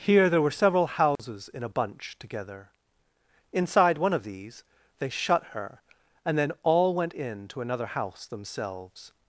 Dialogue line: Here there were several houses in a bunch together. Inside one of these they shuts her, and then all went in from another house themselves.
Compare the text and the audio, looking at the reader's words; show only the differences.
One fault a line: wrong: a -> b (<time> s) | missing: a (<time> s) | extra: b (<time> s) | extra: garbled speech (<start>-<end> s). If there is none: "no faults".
wrong: shuts -> shut (5.1 s)
wrong: from -> to (7.5 s)